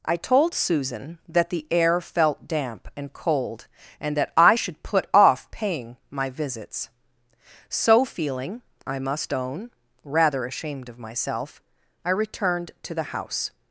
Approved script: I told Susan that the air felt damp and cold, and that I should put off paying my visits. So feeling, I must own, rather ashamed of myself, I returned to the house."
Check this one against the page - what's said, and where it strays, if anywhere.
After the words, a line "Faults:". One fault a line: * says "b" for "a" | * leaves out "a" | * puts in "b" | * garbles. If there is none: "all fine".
I told Susan that the air felt damp and cold, and that I should put off paying my visits. So feeling, I must own, rather ashamed of myself, I returned to the house."
Faults:
all fine